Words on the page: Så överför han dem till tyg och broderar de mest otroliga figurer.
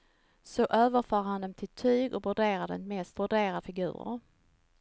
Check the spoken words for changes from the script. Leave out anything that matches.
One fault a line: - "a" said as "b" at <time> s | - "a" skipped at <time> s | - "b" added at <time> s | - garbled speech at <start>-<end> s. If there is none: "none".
- "otroliga" said as "broderar" at 3.1 s